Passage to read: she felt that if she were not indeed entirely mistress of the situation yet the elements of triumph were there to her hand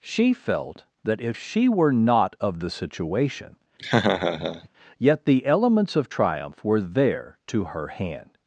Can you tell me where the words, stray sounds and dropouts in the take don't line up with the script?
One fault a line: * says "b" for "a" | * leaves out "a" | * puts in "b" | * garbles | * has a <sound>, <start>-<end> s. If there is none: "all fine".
* leaves out "indeed entirely mistress"
* has a laugh, 3.8-4.7 s